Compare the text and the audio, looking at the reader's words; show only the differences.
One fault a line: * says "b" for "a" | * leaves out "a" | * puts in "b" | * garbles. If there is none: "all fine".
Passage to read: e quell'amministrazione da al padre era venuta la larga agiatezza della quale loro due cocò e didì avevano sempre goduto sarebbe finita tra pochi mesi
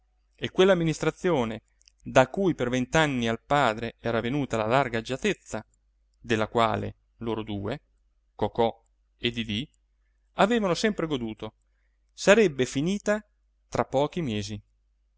* puts in "cui per vent'anni"